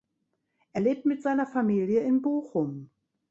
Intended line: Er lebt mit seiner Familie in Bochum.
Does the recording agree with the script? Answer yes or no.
yes